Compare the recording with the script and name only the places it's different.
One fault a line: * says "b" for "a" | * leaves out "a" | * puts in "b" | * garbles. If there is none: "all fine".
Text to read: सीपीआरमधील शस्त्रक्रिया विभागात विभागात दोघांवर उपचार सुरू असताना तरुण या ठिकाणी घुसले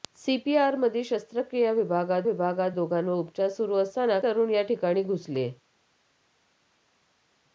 all fine